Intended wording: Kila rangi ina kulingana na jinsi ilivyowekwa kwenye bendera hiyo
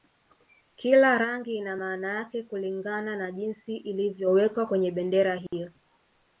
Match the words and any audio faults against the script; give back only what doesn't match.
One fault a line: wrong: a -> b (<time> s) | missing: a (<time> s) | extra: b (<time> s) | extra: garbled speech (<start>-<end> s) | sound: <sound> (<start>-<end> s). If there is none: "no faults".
extra: maana yake (1.7 s)
sound: dropout (5.5-5.5 s)